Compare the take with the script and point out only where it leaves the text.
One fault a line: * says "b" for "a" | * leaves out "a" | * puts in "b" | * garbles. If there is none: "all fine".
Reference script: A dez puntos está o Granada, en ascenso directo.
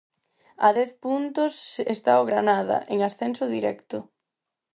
all fine